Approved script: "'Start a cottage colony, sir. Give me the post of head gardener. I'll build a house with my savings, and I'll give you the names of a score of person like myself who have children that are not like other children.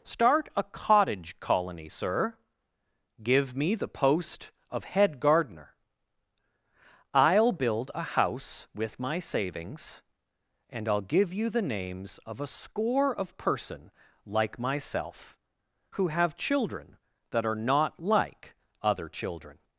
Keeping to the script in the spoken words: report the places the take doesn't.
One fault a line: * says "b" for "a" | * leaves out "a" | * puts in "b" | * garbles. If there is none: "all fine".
all fine